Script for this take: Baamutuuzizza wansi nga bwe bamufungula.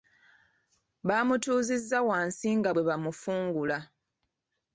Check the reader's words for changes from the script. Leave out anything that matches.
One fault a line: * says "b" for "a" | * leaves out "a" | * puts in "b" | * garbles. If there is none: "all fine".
all fine